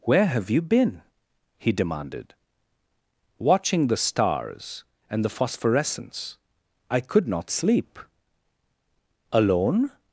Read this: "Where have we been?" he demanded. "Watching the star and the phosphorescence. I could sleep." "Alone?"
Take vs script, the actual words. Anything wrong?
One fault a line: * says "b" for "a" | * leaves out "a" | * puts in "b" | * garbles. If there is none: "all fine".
* says "you" for "we"
* says "stars" for "star"
* puts in "not"